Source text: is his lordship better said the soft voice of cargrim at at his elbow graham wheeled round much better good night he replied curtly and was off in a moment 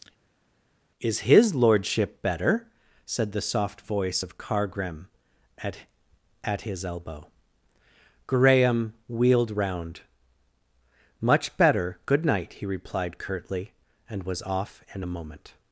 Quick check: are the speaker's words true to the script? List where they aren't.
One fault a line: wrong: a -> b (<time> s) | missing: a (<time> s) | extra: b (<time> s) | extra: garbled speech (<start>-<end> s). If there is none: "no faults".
no faults